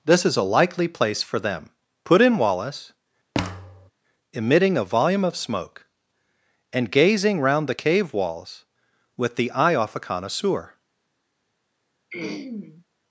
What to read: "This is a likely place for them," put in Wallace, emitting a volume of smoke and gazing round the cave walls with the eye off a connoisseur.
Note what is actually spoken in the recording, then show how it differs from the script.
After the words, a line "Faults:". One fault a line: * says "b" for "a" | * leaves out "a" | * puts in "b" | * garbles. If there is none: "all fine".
"This is a likely place for them," put in Wallace, emitting a volume of smoke and gazing round the cave walls with the eye off a connoisseur.
Faults:
all fine